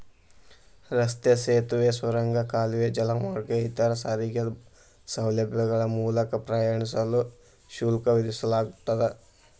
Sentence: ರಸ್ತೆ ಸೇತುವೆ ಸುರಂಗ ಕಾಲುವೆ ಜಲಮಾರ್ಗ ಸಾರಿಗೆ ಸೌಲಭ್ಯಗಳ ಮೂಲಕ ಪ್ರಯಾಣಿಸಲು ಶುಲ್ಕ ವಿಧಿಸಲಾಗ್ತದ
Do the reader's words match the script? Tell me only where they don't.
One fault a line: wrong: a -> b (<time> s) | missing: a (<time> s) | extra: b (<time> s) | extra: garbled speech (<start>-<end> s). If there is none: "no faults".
extra: ಇತರ (3.7 s)